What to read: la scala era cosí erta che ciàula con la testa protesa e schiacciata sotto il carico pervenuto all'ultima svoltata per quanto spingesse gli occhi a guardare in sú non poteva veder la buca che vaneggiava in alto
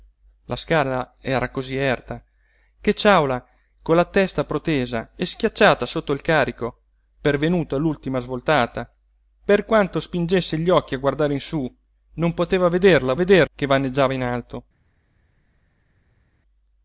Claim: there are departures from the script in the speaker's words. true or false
true